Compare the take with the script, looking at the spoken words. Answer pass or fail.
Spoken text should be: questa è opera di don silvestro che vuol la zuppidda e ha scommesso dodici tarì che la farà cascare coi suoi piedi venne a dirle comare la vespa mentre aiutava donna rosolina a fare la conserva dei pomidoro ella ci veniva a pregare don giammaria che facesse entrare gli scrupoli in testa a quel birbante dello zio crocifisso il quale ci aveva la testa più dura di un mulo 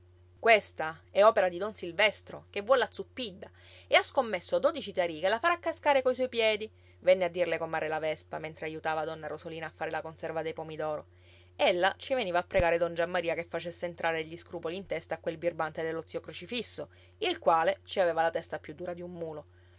pass